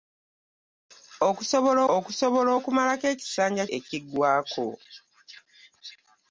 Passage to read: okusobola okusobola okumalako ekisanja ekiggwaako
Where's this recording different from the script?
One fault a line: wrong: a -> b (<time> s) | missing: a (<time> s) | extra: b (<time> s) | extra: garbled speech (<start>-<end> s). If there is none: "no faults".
no faults